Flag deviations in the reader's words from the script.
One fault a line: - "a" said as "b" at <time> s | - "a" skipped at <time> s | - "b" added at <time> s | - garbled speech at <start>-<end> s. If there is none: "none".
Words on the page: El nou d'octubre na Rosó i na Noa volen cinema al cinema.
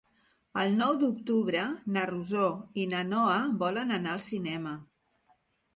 - "cinema" said as "anar" at 4.0 s